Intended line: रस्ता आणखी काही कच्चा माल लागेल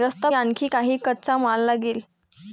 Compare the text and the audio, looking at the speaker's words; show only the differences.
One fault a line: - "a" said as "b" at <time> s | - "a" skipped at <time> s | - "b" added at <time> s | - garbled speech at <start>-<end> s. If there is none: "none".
none